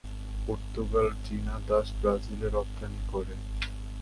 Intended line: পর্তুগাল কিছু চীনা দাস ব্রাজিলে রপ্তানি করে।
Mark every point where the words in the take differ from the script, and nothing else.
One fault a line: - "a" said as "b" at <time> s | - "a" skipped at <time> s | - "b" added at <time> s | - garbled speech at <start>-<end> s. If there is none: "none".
- "কিছু" skipped at 1.1 s